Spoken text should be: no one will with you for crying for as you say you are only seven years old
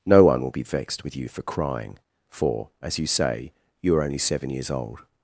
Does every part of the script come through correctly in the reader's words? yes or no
no